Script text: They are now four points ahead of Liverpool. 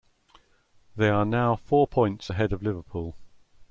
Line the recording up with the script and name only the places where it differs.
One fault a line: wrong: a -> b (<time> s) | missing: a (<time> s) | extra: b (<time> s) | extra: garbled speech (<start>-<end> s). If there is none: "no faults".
no faults